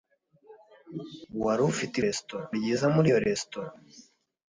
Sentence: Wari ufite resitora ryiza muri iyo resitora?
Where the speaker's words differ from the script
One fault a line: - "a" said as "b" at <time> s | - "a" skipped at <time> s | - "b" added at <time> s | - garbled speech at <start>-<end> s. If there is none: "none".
none